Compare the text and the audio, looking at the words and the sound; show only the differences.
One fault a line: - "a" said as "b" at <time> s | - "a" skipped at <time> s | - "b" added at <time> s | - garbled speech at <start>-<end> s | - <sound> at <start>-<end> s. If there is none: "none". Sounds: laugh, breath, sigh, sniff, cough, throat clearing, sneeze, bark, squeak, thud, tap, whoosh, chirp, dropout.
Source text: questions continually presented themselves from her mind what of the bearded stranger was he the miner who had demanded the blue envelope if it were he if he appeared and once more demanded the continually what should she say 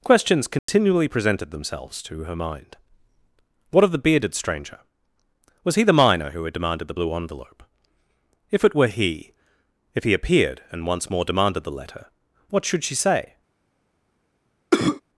- dropout at 0.6-0.7 s
- "from" said as "to" at 2.0 s
- "continually" said as "letter" at 11.7 s
- cough at 14.7-15.0 s